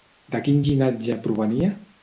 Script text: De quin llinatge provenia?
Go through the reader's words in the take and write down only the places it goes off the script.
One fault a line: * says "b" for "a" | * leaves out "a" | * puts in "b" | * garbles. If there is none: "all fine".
all fine